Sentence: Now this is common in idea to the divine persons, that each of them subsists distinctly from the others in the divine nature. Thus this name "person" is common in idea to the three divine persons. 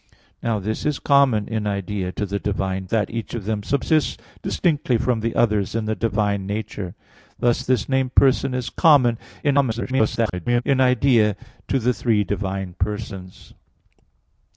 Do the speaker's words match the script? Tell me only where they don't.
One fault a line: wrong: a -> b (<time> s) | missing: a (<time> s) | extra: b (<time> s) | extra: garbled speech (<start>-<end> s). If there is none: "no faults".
missing: persons (2.9 s)
extra: garbled speech (9.4-10.6 s)